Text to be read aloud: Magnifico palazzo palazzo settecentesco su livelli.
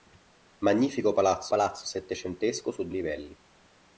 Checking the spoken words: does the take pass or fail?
pass